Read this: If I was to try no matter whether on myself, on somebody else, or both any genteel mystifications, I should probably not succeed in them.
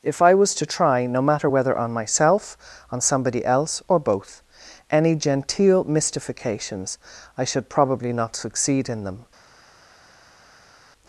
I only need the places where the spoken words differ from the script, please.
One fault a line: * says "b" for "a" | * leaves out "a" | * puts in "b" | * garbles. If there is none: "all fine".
all fine